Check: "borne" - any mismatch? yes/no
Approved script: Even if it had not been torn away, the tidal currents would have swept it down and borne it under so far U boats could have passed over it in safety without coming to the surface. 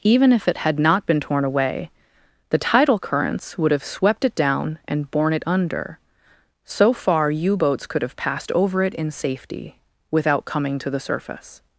no